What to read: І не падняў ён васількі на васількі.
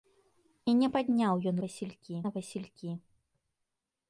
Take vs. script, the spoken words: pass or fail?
pass